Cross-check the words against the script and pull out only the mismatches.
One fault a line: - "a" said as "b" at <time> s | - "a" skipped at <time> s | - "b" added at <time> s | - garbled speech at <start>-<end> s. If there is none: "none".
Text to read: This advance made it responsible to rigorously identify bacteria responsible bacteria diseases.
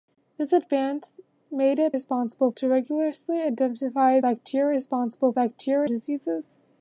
none